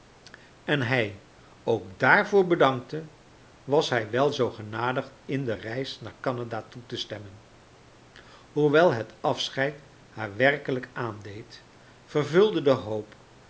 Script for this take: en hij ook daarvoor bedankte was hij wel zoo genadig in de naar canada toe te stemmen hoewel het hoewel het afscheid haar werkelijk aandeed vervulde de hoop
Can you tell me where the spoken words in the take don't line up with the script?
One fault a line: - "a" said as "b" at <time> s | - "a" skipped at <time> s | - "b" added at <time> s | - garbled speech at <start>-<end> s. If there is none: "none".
- "reis" added at 5.5 s
- "hoewel het" skipped at 9.2 s